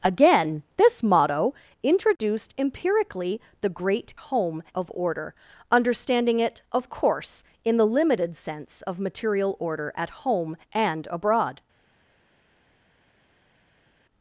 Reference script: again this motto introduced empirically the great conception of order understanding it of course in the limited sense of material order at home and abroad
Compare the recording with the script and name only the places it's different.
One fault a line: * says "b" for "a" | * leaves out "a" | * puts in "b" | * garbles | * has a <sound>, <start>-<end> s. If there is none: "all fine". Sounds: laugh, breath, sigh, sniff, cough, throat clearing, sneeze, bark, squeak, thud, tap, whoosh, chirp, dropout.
* says "home" for "conception"